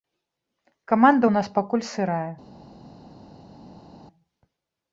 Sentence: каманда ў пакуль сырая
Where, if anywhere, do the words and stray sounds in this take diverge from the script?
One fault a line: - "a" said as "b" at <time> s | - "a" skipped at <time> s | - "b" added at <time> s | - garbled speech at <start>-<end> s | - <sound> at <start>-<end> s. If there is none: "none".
- "нас" added at 1.4 s